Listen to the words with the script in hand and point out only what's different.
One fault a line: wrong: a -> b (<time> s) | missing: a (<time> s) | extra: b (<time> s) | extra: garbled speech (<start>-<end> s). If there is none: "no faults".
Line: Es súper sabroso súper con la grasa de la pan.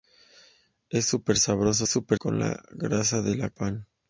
no faults